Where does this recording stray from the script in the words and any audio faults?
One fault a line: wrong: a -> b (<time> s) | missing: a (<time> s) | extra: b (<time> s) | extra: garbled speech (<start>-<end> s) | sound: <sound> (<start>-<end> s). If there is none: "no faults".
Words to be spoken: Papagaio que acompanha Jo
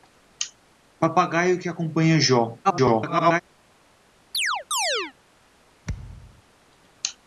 extra: garbled speech (2.6-3.4 s)
sound: chirp (4.3-5.1 s)
sound: thud (5.8-6.4 s)